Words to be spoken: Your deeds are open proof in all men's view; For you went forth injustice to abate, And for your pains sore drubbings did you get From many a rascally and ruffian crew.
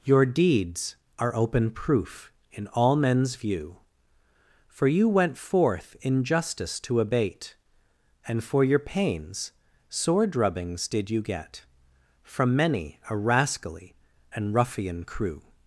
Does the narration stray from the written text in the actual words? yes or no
no